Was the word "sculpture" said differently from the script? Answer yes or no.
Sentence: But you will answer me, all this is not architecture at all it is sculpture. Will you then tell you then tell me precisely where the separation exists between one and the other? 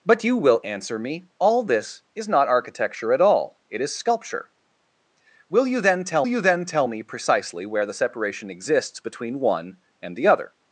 no